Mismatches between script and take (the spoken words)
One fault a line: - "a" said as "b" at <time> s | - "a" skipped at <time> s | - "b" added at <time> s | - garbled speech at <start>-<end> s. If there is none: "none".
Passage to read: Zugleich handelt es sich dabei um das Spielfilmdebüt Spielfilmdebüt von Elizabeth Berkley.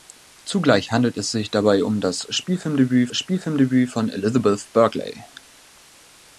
none